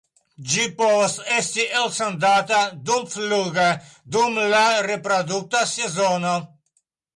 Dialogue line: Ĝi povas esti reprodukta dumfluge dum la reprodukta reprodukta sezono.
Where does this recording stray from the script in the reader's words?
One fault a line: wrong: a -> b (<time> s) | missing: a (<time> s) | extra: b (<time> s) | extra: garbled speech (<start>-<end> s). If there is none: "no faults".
wrong: reprodukta -> elsendata (1.8 s)
missing: reprodukta (5.7 s)